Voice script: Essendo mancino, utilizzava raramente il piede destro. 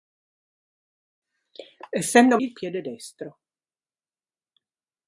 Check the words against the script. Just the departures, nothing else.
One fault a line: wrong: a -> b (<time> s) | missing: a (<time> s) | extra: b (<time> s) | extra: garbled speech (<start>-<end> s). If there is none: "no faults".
missing: mancino utilizzava raramente (2.4 s)